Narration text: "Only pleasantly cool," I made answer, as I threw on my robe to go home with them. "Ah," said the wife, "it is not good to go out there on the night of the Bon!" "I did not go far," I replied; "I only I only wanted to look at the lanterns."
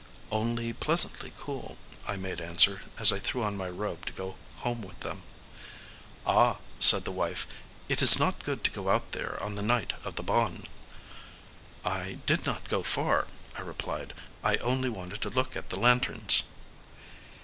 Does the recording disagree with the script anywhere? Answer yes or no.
yes